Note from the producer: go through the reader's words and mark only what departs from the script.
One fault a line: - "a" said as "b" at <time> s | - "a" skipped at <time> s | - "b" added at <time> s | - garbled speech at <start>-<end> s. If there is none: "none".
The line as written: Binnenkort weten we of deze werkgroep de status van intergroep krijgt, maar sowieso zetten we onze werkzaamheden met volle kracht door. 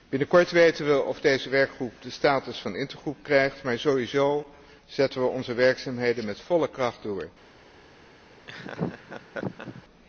none